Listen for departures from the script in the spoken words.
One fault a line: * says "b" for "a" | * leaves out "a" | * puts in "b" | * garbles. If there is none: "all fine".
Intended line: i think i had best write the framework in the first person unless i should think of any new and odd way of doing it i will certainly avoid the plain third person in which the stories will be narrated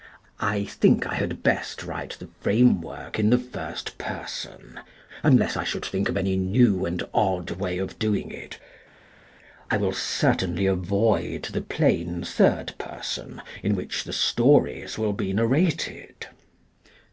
all fine